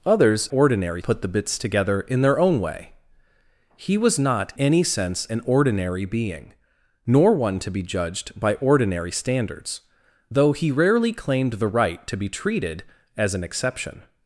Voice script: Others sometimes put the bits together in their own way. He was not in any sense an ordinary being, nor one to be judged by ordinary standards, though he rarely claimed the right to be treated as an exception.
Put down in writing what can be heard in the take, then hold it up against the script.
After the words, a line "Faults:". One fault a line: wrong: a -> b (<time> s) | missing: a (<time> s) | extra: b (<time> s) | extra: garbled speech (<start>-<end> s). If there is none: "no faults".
Others ordinary put the bits together in their own way. He was not any sense an ordinary being, nor one to be judged by ordinary standards, though he rarely claimed the right to be treated as an exception.
Faults:
wrong: sometimes -> ordinary (0.5 s)
missing: in (4.5 s)